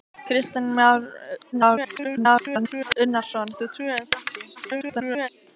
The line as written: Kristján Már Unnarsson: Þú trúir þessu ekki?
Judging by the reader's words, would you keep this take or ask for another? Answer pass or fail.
fail